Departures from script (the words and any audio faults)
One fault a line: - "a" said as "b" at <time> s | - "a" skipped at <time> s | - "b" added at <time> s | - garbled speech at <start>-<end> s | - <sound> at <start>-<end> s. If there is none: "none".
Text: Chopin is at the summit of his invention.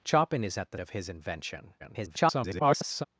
- "summit" skipped at 0.8 s
- garbled speech at 1.8-3.0 s